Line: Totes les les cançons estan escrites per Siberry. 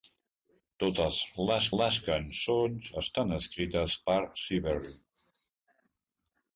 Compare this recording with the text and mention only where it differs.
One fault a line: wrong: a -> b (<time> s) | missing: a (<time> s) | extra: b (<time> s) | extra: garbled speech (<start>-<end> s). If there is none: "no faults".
no faults